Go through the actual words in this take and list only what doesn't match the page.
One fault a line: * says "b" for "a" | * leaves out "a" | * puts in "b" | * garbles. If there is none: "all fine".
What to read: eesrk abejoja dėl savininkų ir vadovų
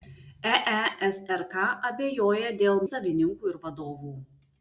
all fine